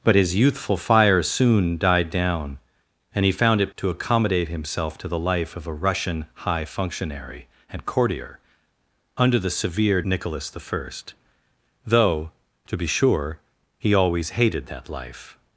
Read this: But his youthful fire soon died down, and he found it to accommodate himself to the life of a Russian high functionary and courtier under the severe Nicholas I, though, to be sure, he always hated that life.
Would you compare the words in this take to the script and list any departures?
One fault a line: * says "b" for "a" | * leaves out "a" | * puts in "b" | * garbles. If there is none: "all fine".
all fine